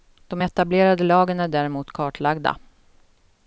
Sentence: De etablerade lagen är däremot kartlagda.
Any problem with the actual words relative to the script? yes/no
no